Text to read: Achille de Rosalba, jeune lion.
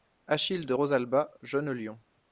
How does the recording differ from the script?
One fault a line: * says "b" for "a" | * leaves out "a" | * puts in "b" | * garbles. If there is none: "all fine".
all fine